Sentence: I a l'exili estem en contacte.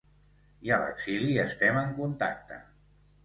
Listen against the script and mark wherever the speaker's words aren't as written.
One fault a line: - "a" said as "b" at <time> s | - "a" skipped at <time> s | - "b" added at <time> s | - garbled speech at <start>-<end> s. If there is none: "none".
none